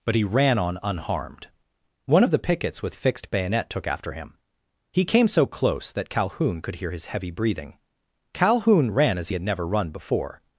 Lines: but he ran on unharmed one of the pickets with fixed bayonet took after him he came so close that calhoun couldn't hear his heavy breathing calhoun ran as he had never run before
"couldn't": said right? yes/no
no